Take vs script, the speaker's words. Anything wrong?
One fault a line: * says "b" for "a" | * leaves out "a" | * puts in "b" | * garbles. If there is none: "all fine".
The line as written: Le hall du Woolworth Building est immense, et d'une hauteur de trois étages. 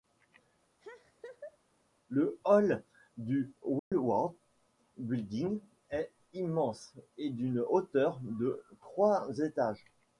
all fine